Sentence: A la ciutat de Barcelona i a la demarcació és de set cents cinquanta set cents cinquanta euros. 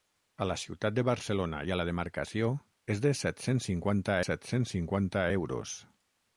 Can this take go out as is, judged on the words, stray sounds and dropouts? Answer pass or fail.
pass